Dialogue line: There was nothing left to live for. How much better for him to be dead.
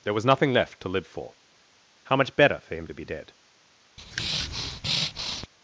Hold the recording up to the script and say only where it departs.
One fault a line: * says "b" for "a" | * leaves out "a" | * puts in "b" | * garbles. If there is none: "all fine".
all fine